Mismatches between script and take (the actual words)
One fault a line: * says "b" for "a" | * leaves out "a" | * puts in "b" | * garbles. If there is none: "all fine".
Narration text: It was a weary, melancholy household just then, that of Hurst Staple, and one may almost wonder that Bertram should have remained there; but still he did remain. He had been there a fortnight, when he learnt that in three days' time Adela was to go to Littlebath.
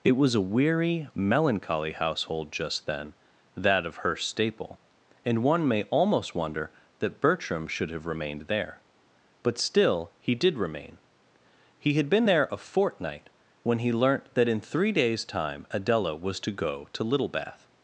all fine